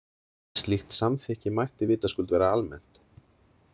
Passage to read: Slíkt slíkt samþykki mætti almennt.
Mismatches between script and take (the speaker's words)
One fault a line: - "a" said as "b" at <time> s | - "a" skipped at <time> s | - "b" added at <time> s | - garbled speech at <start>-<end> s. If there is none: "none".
- "slíkt" skipped at 0.9 s
- "vitaskuld vera" added at 1.9 s